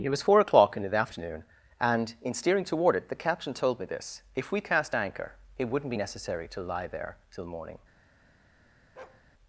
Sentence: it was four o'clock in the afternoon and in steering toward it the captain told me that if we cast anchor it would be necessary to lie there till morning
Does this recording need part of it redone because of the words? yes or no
yes